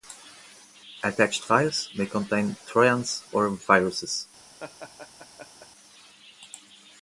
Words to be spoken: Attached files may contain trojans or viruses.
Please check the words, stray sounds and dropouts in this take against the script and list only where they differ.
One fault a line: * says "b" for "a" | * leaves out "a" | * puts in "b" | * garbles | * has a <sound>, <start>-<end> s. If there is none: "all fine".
* has a laugh, 4.6-5.7 s